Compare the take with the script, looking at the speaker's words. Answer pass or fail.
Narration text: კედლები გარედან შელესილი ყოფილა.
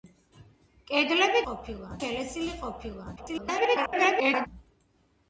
fail